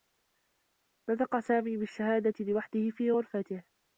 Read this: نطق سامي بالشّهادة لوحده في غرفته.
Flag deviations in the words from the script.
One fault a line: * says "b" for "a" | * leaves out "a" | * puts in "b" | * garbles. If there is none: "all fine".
all fine